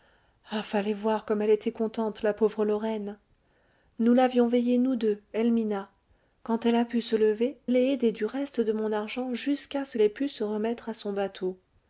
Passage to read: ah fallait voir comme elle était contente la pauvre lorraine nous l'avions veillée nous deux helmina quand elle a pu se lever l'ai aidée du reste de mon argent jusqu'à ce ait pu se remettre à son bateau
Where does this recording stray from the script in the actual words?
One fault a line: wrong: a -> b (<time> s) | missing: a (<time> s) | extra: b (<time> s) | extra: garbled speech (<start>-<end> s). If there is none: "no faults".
no faults